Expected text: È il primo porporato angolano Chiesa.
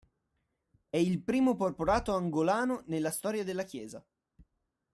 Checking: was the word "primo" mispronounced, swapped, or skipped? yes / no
no